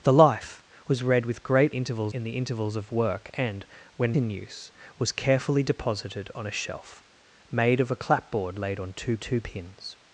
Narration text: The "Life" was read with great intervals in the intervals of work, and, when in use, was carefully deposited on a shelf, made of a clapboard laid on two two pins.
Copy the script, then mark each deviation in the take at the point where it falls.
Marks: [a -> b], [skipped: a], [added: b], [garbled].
The "Life" was read with great intervals in the intervals of work, and, when in use, was carefully deposited on a shelf, made of a clapboard laid on two two pins.